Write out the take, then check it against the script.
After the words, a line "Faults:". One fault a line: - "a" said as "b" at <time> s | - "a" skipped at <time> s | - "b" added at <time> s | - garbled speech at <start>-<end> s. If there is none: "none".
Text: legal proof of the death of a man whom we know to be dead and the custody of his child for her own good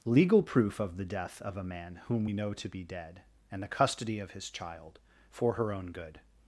legal proof of the death of a man whom we know to be dead and the custody of his child for her own good
Faults:
none